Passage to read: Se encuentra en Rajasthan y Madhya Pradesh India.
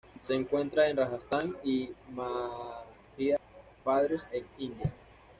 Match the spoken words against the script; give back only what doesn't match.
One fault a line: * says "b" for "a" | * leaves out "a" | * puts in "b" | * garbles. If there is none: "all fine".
* puts in "en"